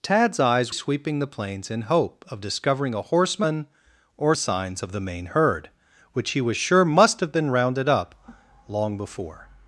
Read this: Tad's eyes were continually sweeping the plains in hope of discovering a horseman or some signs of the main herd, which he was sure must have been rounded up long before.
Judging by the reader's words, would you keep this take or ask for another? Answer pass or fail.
fail